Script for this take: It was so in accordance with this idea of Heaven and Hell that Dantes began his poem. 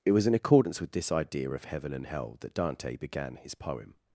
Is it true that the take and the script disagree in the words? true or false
true